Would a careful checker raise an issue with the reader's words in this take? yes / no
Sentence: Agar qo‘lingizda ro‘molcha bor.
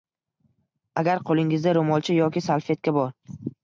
yes